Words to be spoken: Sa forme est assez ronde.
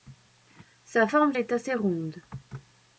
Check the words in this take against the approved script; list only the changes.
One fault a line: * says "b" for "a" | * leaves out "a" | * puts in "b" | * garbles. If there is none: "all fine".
all fine